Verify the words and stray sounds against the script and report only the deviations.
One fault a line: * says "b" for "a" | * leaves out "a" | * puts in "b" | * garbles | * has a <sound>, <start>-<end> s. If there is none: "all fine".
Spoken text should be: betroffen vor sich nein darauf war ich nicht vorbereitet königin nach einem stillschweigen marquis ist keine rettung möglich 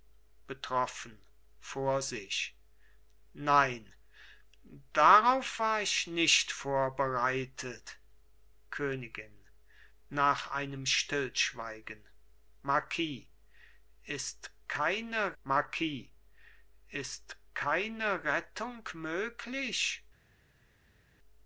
* puts in "marquis ist keine"